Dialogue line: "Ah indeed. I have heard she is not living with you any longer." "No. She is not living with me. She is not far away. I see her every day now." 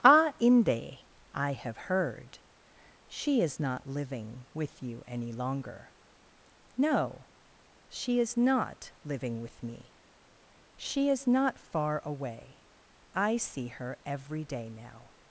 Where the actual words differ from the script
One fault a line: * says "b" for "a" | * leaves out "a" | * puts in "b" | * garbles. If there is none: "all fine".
* says "inde" for "indeed"